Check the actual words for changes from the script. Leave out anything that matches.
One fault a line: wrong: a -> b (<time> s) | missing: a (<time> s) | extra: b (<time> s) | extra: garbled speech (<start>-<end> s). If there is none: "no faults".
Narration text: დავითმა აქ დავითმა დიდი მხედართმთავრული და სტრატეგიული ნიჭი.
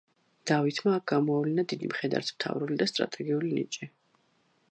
wrong: დავითმა -> გამოავლინა (1.1 s)